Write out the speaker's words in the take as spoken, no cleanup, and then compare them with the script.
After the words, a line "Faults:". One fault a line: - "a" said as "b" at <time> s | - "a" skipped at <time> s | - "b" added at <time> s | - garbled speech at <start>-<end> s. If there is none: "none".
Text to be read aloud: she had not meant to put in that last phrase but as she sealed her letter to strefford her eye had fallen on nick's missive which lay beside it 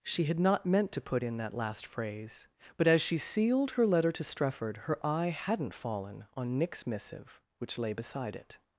she had not meant to put in that last phrase but as she sealed her letter to strefford her eye hadn't fallen on nick's missive which lay beside it
Faults:
- "had" said as "hadn't" at 5.3 s